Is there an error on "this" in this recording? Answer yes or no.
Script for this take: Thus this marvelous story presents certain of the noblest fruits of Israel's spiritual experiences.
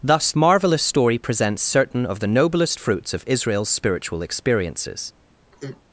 yes